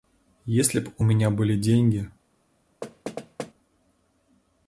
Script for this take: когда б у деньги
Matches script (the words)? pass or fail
fail